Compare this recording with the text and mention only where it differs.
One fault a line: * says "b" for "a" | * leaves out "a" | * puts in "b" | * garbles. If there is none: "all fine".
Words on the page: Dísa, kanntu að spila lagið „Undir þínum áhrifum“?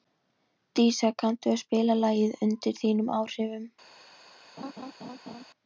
all fine